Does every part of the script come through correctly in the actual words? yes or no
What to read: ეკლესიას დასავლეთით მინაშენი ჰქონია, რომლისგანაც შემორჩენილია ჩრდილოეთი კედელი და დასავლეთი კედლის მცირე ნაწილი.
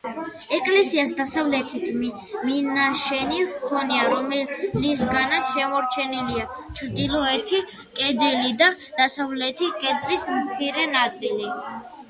yes